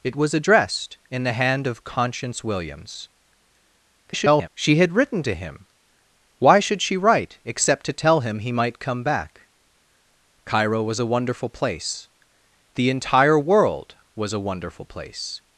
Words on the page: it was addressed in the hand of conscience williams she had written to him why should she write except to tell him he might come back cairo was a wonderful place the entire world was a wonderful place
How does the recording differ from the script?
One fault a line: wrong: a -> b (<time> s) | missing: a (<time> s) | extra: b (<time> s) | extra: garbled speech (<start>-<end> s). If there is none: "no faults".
extra: garbled speech (4.0-4.5 s)